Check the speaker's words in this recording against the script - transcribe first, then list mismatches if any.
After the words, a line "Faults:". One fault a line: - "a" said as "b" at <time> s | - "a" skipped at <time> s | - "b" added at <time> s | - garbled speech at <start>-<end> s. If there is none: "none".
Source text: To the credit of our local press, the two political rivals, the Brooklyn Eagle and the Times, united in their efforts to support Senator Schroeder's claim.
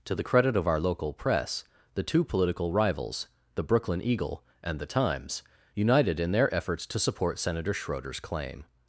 To the credit of our local press, the two political rivals, the Brooklyn Eagle and the Times, united in their efforts to support Senator Schroeder's claim.
Faults:
none